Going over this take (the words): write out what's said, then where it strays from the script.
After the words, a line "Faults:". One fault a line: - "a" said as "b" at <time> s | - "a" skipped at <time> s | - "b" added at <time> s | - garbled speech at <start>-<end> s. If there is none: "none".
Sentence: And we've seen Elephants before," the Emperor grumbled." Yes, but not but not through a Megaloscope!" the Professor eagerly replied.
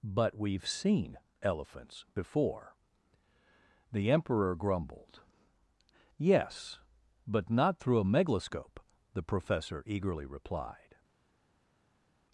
But we've seen Elephants before," the Emperor grumbled." Yes, but not through a Megaloscope!" the Professor eagerly replied.
Faults:
- "And" said as "But" at 0.0 s
- "but not" skipped at 7.8 s